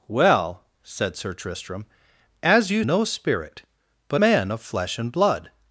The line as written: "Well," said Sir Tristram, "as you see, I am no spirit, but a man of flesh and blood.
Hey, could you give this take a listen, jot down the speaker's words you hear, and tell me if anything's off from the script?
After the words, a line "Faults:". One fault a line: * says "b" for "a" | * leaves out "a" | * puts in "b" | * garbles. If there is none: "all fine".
"Well," said Sir Tristram, "as you no spirit, but man of flesh and blood.
Faults:
* leaves out "see I am"
* leaves out "a"